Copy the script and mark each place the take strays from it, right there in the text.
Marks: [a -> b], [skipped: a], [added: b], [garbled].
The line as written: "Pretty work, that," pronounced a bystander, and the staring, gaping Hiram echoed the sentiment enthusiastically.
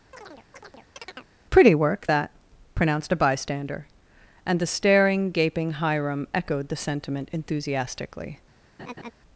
"Pretty work, that," pronounced a bystander, and the staring, gaping Hiram echoed the sentiment enthusiastically.